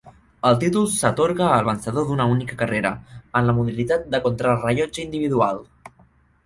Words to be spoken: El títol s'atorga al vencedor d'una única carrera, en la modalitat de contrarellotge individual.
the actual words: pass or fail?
pass